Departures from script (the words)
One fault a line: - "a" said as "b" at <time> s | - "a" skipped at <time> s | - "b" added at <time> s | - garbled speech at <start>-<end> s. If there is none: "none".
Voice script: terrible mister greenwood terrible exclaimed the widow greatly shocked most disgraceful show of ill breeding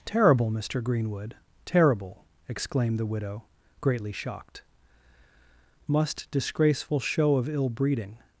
- "most" said as "must" at 5.9 s